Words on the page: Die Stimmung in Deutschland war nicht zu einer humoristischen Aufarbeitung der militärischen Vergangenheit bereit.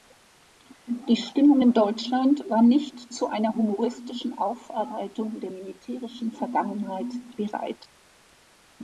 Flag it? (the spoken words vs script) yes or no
no